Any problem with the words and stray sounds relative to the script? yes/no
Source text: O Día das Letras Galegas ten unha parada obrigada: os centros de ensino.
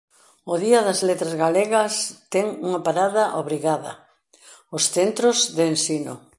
no